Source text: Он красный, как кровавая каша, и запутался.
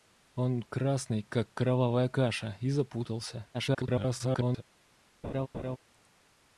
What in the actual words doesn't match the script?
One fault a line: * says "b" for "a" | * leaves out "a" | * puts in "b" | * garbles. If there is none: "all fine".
* garbles